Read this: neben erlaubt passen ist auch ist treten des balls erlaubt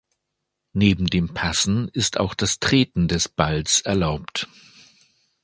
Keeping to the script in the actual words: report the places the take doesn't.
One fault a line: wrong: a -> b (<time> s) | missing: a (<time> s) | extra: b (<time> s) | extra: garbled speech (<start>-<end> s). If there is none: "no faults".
wrong: erlaubt -> dem (1.1 s)
wrong: ist -> das (2.3 s)